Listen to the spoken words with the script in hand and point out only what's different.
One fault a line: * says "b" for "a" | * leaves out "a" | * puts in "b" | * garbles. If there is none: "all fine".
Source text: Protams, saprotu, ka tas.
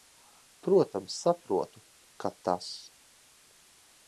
all fine